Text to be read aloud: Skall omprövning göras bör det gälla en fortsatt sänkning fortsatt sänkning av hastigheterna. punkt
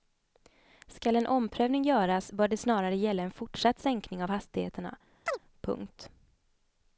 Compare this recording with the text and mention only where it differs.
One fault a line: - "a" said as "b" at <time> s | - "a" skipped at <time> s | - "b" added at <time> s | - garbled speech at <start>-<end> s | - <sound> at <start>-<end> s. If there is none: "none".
- "en" added at 1.1 s
- "snarare" added at 2.6 s
- "fortsatt sänkning" skipped at 4.2 s
- chirp at 5.3-5.4 s